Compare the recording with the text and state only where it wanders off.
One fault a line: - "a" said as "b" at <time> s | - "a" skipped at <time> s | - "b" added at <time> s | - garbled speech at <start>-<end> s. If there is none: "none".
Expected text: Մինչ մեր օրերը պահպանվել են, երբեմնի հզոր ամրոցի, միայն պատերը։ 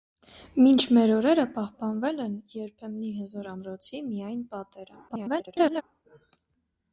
- garbled speech at 5.1-5.8 s